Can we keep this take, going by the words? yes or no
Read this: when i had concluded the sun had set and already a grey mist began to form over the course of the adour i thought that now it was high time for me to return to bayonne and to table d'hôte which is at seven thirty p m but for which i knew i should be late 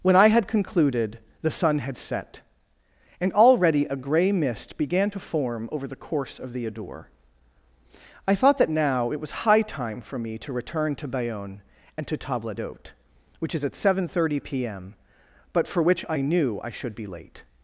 yes